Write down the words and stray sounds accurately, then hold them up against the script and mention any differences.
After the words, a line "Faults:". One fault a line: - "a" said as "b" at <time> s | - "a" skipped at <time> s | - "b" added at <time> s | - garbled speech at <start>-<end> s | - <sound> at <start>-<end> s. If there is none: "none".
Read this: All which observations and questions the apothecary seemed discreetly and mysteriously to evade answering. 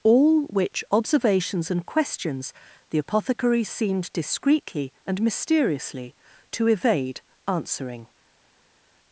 All which observations and questions the apothecary seemed discreetly and mysteriously to evade answering.
Faults:
none